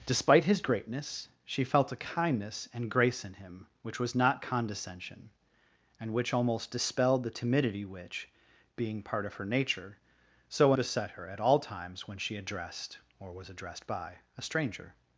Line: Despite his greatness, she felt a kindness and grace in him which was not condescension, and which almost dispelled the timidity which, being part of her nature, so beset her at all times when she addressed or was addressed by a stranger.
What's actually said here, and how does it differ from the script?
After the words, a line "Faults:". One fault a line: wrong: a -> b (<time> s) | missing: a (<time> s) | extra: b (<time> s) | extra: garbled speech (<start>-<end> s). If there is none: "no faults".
Despite his greatness, she felt a kindness and grace in him which was not condescension, and which almost dispelled the timidity which, being part of her nature, so beset her at all times when she addressed or was addressed by a stranger.
Faults:
no faults